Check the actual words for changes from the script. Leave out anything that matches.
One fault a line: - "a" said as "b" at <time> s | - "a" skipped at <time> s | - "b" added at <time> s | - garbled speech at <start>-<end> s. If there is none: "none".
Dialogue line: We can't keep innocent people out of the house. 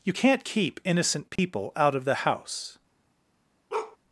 - "We" said as "You" at 0.0 s